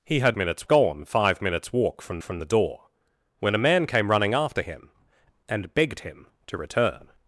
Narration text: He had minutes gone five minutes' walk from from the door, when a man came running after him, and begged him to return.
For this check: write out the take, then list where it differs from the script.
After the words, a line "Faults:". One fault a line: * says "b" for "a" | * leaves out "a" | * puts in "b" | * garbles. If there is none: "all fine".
He had minutes gone five minutes' walk from from the door, when a man came running after him, and begged him to return.
Faults:
all fine